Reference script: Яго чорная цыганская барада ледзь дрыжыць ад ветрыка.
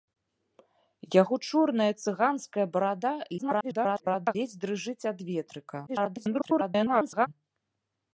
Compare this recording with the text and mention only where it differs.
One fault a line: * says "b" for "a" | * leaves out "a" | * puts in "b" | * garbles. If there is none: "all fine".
* garbles
* garbles